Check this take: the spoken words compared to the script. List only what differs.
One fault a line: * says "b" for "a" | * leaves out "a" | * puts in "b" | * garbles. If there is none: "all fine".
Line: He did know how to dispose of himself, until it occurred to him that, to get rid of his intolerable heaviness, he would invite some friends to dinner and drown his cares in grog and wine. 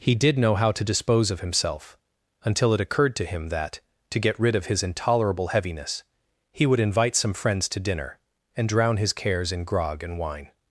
all fine